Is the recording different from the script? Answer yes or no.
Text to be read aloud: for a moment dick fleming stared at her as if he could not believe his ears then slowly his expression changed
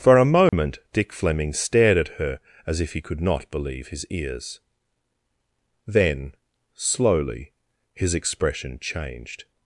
no